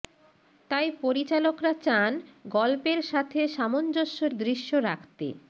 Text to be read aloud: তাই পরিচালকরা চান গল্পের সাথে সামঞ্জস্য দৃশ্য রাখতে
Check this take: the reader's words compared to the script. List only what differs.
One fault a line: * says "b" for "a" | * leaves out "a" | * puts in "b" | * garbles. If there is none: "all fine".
all fine